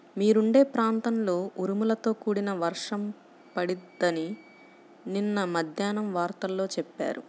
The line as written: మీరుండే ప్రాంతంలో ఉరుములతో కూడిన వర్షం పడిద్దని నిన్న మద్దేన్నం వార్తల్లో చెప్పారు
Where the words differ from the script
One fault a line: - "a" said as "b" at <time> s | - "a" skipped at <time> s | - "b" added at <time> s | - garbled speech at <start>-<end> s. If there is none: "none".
none